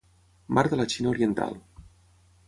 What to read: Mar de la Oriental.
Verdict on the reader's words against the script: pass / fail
fail